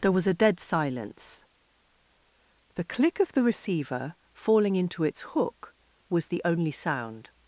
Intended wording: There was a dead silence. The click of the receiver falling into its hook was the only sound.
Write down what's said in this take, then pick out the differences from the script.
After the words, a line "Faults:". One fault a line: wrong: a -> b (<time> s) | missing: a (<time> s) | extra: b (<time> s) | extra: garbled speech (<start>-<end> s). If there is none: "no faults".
There was a dead silence. The click of the receiver falling into its hook was the only sound.
Faults:
no faults